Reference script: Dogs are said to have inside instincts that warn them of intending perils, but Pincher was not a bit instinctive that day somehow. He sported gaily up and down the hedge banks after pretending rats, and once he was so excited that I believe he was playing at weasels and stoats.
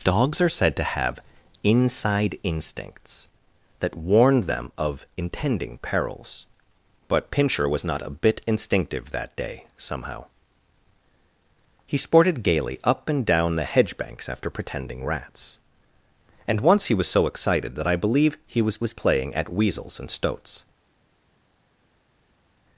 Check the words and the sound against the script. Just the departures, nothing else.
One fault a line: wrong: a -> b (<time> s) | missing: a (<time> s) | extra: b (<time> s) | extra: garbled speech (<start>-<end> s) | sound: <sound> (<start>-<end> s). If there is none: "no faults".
extra: was (18.8 s)